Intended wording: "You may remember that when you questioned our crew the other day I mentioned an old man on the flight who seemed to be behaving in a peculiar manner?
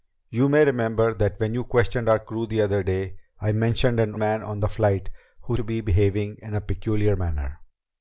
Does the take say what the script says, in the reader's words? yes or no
no